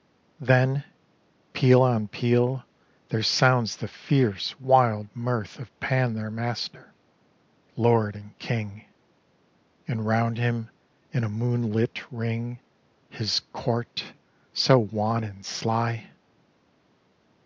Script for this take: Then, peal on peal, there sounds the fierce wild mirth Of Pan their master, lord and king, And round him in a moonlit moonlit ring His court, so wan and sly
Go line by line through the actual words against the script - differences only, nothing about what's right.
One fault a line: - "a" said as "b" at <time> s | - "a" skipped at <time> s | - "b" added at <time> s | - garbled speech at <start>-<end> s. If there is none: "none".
- "moonlit" skipped at 12.1 s